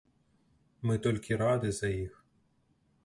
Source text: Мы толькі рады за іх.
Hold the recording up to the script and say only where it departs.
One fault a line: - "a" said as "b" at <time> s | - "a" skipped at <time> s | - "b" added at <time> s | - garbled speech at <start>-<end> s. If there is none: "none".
none